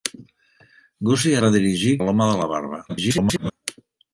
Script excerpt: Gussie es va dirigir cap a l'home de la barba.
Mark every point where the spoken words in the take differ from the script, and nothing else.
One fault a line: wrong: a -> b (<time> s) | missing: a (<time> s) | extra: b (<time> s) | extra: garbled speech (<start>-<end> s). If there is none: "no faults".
missing: es (1.4 s)
missing: cap (2.0 s)
extra: garbled speech (2.9-3.5 s)